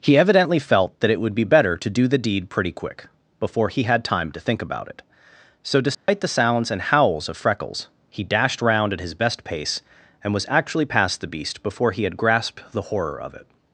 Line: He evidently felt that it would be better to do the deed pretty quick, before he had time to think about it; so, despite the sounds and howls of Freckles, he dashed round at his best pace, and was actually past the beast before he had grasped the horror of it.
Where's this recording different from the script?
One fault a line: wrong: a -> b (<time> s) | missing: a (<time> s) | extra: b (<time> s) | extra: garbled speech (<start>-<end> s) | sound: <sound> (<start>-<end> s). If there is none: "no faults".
sound: dropout (5.9-6.1 s)